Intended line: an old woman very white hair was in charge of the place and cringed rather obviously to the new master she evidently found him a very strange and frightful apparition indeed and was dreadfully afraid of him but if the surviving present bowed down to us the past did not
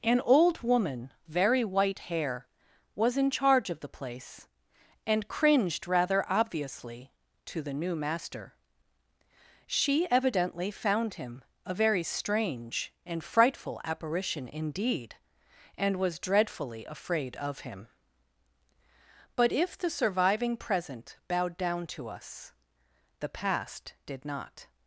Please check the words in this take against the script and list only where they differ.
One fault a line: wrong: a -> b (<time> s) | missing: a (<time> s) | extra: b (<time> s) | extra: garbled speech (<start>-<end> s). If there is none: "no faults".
no faults